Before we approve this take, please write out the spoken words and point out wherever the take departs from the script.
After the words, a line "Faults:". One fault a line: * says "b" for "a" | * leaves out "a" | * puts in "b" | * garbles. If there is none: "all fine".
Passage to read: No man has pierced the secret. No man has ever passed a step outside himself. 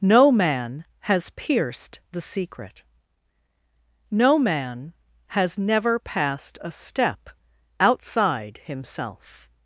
No man has pierced the secret. No man has never passed a step outside himself.
Faults:
* says "never" for "ever"